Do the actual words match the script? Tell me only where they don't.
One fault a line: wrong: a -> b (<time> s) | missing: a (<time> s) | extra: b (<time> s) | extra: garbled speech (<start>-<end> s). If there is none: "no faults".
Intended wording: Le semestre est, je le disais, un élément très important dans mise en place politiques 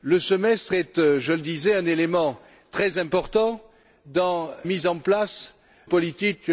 no faults